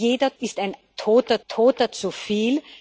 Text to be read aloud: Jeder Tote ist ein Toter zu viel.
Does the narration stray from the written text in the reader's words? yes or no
yes